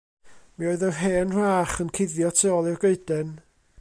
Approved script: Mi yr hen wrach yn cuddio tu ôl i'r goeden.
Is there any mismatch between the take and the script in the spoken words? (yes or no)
yes